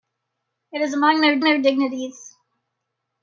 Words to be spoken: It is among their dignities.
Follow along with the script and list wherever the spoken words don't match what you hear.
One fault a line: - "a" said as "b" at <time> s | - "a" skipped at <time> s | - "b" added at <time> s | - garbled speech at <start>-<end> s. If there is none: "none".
- "their" added at 1.4 s